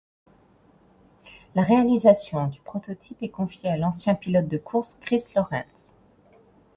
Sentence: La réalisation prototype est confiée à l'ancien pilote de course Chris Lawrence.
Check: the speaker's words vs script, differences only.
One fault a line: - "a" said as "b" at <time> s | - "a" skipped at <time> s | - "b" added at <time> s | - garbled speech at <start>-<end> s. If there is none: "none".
- "du" added at 2.5 s